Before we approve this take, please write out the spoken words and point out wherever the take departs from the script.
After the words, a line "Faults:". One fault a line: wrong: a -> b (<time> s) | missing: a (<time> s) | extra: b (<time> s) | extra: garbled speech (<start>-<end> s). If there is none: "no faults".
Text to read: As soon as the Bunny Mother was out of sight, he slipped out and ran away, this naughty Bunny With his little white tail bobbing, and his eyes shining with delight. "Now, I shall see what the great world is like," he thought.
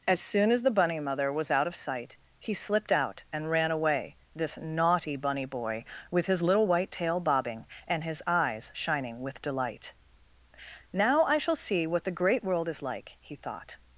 As soon as the Bunny Mother was out of sight, he slipped out and ran away, this naughty Bunny Boy, with his little white tail bobbing, and his eyes shining with delight. "Now, I shall see what the great world is like," he thought.
Faults:
extra: Boy (5.5 s)